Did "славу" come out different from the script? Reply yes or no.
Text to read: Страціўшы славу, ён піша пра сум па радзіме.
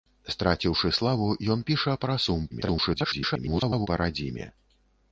no